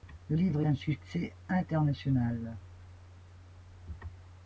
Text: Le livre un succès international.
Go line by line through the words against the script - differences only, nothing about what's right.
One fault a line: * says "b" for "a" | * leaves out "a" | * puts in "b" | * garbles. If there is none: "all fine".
all fine